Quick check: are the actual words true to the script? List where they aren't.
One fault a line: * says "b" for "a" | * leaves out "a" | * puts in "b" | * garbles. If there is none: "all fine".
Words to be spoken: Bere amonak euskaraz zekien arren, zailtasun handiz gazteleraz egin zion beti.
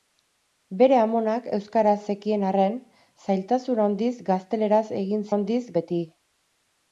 * says "handiz" for "zion"